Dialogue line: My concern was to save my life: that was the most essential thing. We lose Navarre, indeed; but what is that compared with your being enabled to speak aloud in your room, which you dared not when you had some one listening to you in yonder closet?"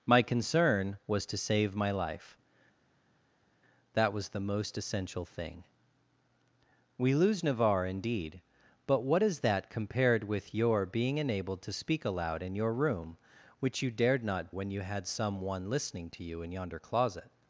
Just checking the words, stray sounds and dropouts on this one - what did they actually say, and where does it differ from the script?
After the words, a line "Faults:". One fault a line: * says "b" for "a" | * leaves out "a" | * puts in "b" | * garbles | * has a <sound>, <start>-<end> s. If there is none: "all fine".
My concern was to save my life: that was the most essential thing. We lose Navarre, indeed; but what is that compared with your being enabled to speak aloud in your room, which you dared not when you had some one listening to you in yonder closet?"
Faults:
all fine